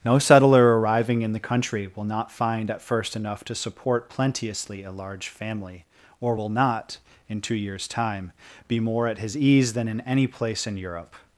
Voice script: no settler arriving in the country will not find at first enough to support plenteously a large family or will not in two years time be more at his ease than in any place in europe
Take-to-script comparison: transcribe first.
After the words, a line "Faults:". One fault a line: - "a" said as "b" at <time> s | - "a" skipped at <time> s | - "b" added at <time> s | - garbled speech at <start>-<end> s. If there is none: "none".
no settler arriving in the country will not find at first enough to support plenteously a large family or will not in two years time be more at his ease than in any place in europe
Faults:
none